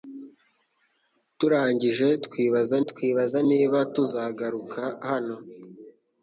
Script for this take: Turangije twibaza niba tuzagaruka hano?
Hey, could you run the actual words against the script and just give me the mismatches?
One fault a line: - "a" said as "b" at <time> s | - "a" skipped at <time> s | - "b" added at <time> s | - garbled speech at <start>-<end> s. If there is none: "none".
- "twibaza" added at 2.9 s